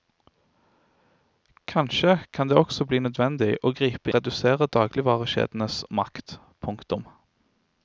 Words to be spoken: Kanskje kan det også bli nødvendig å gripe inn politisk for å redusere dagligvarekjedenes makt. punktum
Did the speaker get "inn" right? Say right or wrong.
wrong